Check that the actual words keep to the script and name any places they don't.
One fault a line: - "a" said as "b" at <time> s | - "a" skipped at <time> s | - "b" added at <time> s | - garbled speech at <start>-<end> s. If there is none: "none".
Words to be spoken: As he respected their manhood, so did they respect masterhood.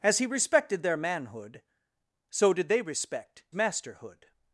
none